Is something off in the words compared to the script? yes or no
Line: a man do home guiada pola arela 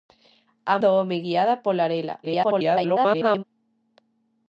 yes